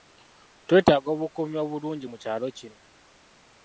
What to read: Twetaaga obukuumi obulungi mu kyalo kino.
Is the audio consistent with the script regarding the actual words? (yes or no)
yes